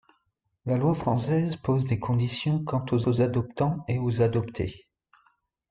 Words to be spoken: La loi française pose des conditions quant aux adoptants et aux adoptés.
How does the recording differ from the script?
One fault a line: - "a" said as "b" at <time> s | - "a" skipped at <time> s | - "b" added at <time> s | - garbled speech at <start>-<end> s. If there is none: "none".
- "aux" added at 3.1 s